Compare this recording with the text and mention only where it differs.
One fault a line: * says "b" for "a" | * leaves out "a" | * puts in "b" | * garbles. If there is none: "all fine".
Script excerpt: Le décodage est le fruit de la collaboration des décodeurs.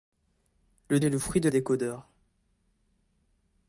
* leaves out "décodage"
* leaves out "la collaboration des"